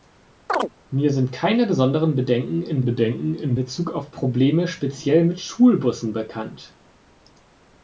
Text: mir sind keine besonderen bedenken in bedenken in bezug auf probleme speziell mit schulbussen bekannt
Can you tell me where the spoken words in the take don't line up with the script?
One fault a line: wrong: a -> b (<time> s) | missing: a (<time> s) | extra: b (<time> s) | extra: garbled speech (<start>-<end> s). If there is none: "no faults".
no faults